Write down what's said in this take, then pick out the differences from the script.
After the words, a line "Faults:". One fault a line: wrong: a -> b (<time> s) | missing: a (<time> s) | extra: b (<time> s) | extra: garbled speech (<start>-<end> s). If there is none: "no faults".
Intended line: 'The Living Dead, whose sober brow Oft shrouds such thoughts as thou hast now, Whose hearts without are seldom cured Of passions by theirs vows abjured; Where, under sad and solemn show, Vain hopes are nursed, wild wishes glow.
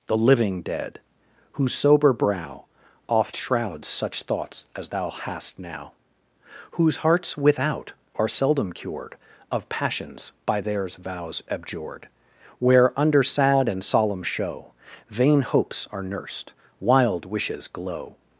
'The Living Dead, whose sober brow Oft shrouds such thoughts as thou hast now, Whose hearts without are seldom cured Of passions by theirs vows abjured; Where, under sad and solemn show, Vain hopes are nursed, wild wishes glow.
Faults:
no faults